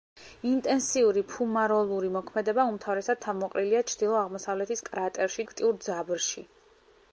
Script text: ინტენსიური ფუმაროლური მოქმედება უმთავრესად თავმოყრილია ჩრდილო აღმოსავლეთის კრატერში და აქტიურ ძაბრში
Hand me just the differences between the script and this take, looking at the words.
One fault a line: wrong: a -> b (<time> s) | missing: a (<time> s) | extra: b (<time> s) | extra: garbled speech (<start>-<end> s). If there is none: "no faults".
missing: და (5.5 s)